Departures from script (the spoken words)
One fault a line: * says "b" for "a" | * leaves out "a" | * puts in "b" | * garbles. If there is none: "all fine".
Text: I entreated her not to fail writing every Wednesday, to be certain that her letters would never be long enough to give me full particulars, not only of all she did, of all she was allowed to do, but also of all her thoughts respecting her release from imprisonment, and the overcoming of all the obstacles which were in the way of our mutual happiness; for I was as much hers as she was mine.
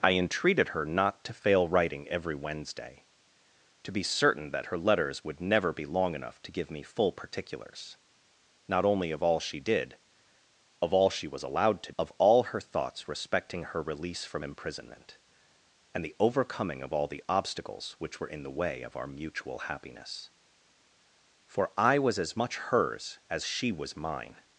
* leaves out "do but also"